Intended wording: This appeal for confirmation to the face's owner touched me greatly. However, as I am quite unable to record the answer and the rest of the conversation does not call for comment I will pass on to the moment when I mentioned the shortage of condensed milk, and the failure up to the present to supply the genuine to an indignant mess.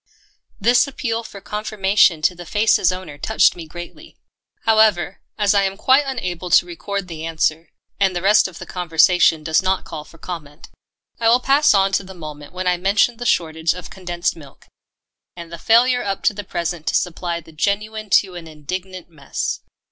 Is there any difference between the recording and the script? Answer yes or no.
no